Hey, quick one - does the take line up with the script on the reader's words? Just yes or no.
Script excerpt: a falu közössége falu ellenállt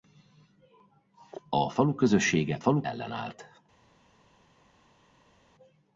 yes